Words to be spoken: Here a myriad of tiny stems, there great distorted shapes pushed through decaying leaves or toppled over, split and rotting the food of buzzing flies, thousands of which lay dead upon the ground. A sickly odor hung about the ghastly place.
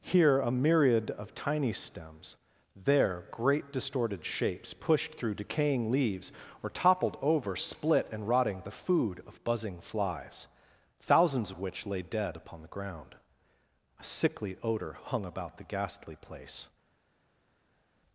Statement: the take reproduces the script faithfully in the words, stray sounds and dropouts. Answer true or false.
true